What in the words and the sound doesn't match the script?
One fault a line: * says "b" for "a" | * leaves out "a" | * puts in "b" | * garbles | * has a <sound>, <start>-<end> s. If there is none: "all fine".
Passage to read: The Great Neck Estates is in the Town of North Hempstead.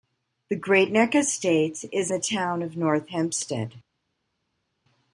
* leaves out "in"